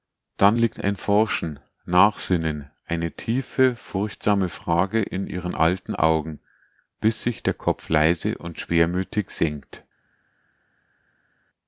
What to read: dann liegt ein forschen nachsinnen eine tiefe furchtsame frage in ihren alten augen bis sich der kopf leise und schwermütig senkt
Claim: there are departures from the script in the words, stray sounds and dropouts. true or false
false